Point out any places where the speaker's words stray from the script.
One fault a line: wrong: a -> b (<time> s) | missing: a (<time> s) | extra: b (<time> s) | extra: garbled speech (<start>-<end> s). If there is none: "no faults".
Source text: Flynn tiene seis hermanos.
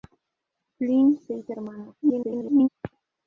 missing: tiene (1.2 s)
extra: garbled speech (2.0-2.7 s)